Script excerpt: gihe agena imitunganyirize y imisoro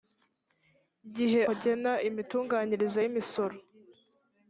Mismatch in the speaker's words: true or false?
false